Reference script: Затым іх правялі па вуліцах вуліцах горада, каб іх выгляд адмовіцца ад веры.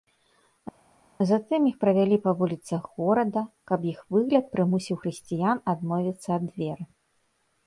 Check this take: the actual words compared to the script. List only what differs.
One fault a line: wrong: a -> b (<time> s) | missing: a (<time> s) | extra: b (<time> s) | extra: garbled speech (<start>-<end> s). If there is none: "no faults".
missing: вуліцах (2.8 s)
extra: прымусіў хрысціян (4.6 s)